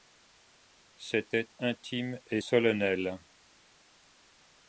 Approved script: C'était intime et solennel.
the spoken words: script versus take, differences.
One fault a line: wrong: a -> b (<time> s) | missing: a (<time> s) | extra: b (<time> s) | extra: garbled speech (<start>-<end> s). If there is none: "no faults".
no faults